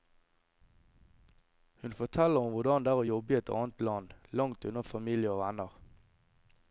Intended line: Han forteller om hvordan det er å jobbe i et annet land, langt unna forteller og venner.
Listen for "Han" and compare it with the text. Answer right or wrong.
wrong